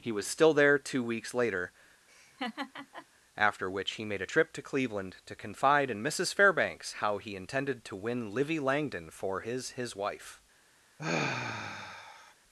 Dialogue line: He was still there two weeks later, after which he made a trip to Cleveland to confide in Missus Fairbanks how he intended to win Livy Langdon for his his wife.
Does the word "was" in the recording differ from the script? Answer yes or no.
no